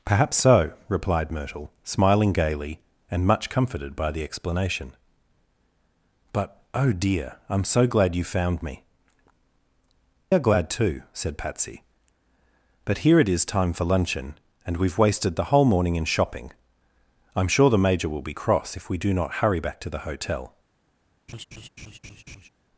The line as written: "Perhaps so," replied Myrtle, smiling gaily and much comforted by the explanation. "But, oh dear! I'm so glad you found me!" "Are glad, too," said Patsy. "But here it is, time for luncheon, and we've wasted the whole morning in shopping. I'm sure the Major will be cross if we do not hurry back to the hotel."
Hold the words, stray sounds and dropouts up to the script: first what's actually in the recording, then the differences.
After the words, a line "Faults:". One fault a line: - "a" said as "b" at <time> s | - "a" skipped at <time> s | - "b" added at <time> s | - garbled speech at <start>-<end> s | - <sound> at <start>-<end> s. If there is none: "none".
"Perhaps so," replied Myrtle, smiling gaily and much comforted by the explanation. "But, oh dear! I'm so glad you found me!" "Are glad, too," said Patsy. "But here it is, time for luncheon, and we've wasted the whole morning in shopping. I'm sure the Major will be cross if we do not hurry back to the hotel."
Faults:
- laugh at 21.3-22.5 s